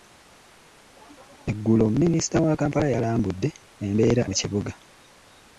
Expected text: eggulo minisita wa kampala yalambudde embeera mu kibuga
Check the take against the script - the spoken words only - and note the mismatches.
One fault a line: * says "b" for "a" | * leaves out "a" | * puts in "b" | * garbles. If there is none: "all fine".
all fine